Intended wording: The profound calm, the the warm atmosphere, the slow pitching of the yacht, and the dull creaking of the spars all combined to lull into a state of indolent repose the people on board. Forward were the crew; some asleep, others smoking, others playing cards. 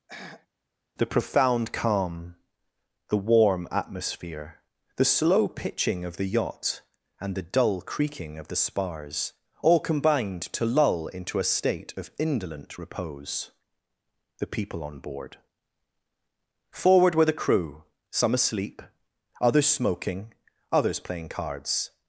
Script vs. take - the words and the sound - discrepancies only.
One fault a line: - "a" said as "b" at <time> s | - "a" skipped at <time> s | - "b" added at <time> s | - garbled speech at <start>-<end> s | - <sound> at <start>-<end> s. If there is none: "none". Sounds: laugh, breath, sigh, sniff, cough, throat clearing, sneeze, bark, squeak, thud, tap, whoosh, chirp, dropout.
- throat clearing at 0.1-0.5 s
- "the" skipped at 3.2 s